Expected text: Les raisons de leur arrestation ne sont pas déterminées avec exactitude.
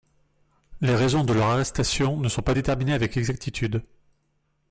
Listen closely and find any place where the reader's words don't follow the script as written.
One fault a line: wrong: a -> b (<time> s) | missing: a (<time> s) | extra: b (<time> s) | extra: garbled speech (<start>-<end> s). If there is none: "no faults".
no faults